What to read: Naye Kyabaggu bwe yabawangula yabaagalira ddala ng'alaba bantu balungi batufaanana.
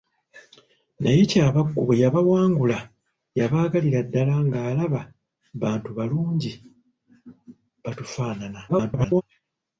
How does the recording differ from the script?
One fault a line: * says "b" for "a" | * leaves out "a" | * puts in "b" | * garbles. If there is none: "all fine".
* garbles